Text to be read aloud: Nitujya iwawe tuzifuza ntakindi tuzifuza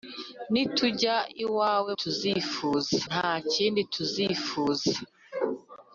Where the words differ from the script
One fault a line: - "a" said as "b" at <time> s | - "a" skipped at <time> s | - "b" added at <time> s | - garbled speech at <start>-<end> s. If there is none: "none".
none